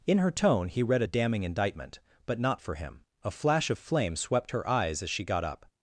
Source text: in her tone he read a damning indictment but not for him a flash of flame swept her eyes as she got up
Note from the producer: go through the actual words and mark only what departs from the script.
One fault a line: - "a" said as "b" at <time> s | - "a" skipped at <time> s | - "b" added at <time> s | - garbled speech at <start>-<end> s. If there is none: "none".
none